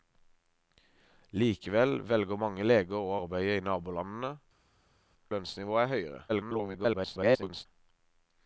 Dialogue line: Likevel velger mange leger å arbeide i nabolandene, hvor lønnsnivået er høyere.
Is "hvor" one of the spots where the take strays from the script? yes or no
yes